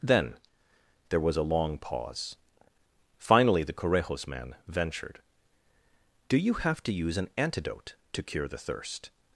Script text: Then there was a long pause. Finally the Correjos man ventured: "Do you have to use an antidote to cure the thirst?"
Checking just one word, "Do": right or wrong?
right